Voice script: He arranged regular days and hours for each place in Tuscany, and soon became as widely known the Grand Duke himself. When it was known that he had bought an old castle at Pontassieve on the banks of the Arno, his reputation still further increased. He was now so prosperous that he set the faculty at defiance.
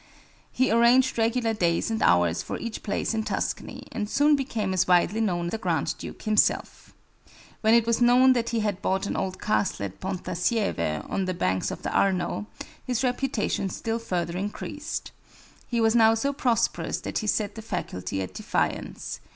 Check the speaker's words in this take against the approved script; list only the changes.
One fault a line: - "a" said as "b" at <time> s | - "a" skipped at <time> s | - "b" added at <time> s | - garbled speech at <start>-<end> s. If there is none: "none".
none